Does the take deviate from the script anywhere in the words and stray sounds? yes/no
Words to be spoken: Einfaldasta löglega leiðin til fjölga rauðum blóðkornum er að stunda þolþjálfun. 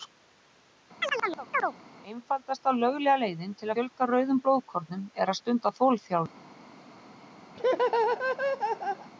yes